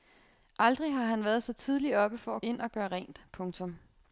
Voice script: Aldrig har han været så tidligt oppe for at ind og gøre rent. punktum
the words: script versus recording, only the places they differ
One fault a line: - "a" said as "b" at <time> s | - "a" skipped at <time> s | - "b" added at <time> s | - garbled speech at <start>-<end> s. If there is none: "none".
none